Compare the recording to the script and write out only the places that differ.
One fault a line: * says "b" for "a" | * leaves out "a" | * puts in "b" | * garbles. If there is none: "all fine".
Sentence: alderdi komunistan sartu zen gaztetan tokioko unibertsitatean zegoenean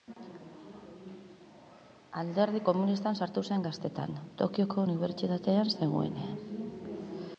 all fine